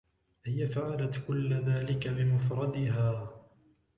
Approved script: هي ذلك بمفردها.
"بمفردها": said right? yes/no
yes